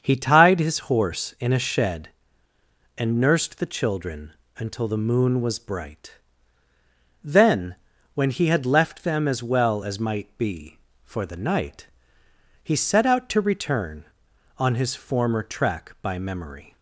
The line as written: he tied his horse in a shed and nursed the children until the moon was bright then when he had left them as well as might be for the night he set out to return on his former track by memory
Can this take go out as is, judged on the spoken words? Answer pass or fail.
pass